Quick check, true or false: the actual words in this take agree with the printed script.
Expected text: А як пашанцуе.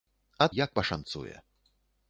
true